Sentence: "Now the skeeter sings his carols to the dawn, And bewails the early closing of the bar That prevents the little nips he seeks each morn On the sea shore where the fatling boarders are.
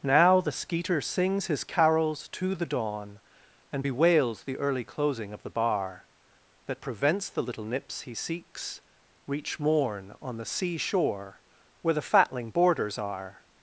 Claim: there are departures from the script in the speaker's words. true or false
true